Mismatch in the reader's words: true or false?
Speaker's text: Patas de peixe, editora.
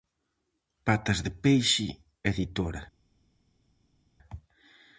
false